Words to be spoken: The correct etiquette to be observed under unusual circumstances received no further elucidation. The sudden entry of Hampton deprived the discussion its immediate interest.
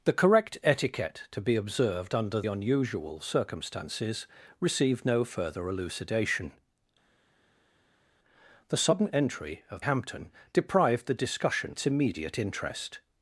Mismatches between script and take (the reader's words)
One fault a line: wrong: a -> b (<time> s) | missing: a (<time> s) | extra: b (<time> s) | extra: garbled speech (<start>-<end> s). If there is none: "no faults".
no faults